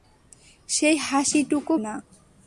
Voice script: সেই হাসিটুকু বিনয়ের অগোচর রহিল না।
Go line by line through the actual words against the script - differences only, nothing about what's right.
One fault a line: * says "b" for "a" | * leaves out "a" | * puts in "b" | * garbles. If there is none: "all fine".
* leaves out "বিনয়ের অগোচর রহিল"